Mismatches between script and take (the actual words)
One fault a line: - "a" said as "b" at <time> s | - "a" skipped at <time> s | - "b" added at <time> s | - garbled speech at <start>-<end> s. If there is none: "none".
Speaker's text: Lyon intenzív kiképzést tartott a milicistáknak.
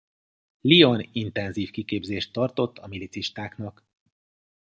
none